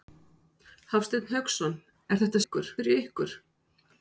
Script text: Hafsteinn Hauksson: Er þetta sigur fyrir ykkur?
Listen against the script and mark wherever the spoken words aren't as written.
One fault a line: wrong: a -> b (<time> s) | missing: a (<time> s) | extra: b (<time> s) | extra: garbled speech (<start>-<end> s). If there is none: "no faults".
wrong: sigur -> ykkur (2.4 s)